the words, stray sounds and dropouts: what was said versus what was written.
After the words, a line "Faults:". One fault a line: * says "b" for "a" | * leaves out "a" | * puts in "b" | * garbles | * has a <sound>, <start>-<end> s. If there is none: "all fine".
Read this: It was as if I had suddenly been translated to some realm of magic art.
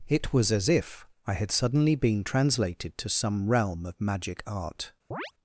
It was as if I had suddenly been translated to some realm of magic art.
Faults:
* has a chirp, 5.1-5.3 s